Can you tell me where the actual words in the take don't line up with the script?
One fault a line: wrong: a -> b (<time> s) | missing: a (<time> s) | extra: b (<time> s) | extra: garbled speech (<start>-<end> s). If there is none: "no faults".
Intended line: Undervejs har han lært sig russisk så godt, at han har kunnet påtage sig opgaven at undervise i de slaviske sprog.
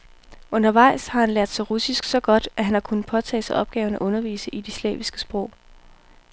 no faults